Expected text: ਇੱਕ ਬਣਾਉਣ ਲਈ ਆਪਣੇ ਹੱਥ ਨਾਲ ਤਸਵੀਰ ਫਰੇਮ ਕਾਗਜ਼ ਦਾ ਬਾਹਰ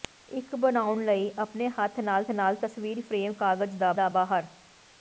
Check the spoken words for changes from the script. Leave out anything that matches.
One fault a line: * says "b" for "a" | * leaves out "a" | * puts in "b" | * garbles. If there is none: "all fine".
* puts in "ਨਾਲ"
* puts in "ਦਾ"